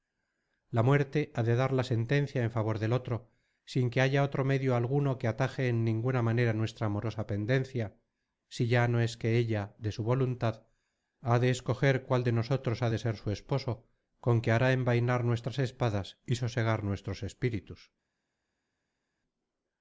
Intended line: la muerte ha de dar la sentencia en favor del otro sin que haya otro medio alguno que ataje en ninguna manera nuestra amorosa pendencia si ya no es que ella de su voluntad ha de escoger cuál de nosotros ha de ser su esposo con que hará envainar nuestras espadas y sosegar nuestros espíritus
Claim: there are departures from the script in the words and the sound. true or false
false